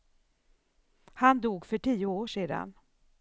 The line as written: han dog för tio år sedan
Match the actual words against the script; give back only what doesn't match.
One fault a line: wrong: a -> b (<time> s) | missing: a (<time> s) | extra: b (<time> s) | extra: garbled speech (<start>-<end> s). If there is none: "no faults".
no faults